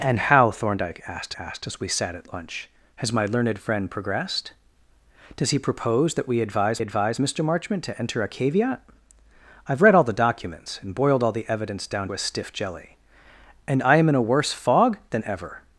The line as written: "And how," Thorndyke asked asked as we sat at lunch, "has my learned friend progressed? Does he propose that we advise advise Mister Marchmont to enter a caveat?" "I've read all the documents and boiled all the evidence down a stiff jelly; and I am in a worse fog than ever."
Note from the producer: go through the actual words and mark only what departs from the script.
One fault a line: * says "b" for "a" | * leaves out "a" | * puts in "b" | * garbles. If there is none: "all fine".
all fine